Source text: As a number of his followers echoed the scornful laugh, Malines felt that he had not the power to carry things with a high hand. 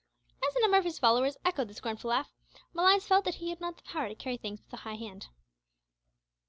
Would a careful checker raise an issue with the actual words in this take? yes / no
no